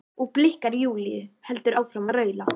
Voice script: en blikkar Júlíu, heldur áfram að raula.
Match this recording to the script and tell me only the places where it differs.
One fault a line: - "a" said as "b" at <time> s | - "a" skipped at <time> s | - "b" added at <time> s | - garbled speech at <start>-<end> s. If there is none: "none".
- "en" said as "og" at 0.2 s